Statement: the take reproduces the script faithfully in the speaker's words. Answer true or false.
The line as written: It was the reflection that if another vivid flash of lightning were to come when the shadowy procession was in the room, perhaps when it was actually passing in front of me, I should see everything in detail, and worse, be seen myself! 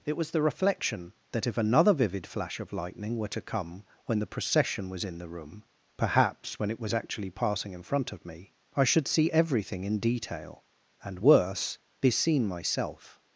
false